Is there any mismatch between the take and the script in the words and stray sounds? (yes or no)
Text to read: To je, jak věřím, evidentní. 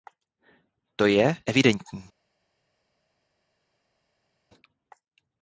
yes